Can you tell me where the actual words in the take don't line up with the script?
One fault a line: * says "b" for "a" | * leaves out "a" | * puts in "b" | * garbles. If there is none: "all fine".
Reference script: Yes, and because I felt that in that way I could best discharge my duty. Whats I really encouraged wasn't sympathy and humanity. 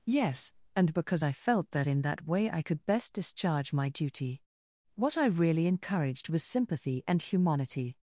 * says "What" for "Whats"
* says "was" for "wasn't"